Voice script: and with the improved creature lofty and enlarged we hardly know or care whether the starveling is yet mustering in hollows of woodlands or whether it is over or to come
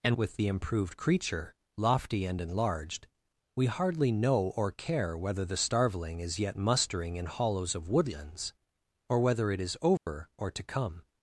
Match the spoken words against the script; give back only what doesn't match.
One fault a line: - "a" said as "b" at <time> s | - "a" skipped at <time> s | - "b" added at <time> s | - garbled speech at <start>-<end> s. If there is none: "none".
none